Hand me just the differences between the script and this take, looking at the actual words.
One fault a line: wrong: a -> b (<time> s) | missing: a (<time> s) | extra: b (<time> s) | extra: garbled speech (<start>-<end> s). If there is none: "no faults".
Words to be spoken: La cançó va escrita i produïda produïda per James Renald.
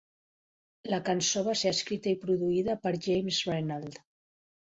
extra: ser (1.6 s)
missing: produïda (2.8 s)